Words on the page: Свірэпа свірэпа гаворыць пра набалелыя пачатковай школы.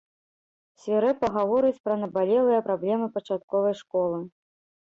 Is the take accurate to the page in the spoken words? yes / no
no